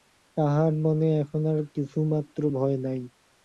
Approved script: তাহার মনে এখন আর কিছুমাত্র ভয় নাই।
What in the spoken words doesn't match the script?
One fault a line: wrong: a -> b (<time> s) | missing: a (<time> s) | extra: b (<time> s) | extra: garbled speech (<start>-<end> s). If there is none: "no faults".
no faults